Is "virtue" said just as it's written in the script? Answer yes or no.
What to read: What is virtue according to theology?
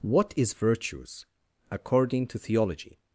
no